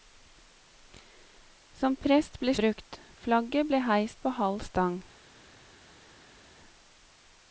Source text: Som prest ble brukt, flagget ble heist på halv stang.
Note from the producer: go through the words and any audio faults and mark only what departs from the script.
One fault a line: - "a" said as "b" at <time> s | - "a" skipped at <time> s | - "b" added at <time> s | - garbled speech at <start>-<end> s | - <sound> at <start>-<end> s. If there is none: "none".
none